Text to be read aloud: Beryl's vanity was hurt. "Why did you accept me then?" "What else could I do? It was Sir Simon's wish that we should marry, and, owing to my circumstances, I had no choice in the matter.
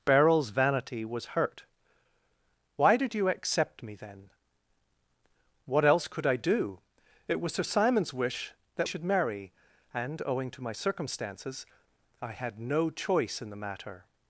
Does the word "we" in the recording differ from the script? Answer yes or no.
yes